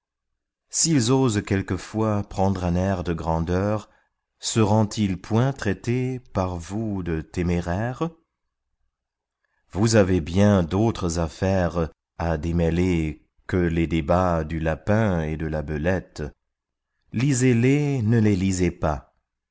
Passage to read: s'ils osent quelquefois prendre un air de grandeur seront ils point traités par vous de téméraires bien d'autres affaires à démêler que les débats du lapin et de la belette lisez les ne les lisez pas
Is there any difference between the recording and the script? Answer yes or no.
yes